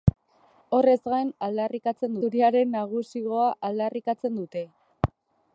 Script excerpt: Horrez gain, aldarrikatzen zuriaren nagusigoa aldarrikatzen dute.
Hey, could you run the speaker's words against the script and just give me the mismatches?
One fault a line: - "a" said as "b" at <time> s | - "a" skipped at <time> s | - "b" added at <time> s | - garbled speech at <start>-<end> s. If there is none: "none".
none